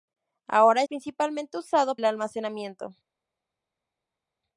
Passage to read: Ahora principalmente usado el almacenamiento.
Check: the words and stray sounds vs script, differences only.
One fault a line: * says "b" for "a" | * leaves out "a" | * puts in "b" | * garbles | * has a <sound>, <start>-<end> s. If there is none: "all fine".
all fine